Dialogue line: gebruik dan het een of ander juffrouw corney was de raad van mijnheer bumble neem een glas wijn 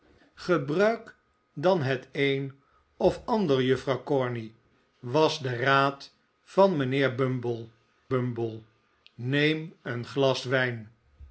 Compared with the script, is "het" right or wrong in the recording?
right